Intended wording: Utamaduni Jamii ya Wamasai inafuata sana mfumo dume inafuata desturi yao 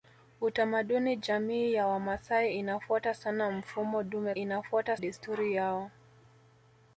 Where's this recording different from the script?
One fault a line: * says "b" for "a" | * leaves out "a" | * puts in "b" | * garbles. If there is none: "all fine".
all fine